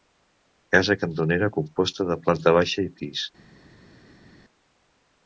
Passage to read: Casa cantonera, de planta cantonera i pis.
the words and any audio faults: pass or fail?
fail